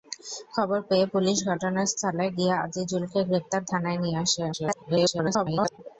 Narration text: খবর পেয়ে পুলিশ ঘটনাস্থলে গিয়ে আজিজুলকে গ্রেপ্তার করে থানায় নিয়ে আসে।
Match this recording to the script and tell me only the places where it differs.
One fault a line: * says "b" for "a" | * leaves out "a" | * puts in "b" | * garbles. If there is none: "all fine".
* leaves out "করে"
* garbles